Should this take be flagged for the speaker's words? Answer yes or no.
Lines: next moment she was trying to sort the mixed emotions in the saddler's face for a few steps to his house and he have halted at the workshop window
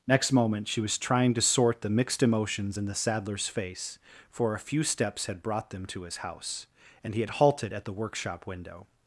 yes